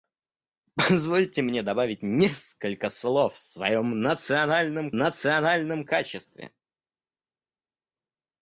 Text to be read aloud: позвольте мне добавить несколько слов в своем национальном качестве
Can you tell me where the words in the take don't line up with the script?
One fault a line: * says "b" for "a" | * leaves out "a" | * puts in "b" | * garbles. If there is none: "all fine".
* puts in "национальном"